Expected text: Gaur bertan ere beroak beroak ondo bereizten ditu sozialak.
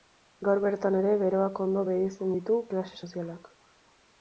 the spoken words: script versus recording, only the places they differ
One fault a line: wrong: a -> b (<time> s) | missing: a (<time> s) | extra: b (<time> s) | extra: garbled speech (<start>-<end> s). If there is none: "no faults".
missing: beroak (1.6 s)
extra: klase (2.7 s)